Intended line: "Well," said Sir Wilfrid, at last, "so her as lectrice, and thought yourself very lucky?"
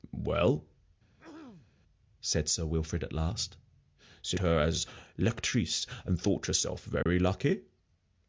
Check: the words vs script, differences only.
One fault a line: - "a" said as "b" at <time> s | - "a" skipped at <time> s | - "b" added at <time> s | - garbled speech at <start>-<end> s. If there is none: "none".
none